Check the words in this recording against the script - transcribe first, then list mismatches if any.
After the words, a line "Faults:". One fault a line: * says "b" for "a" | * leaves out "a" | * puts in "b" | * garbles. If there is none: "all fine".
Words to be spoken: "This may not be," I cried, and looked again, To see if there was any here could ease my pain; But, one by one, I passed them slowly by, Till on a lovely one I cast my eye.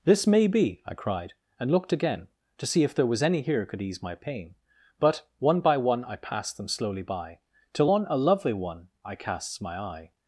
"This may be," I cried, and looked again, To see if there was any here could ease my pain; But, one by one, I passed them slowly by, Till on a lovely one I casts my eye.
Faults:
* leaves out "not"
* says "casts" for "cast"